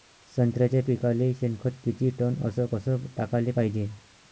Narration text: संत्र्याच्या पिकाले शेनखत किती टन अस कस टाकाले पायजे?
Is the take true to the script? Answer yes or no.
yes